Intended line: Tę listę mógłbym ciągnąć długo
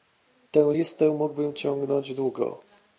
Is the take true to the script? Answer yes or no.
yes